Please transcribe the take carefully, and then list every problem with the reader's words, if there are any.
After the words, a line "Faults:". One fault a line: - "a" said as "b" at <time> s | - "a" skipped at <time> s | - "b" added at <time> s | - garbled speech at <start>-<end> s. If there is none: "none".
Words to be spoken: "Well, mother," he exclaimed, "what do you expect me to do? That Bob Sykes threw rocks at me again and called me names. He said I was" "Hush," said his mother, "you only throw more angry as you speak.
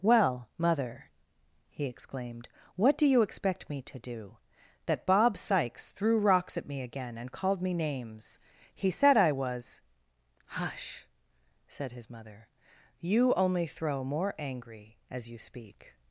"Well, mother," he exclaimed, "what do you expect me to do? That Bob Sykes threw rocks at me again and called me names. He said I was" "Hush," said his mother, "you only throw more angry as you speak.
Faults:
none